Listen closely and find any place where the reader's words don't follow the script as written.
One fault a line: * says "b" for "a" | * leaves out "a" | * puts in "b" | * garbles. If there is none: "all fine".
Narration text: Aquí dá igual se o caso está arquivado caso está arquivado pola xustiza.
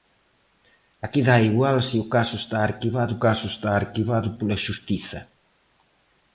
all fine